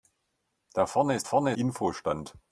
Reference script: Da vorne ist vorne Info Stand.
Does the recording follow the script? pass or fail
pass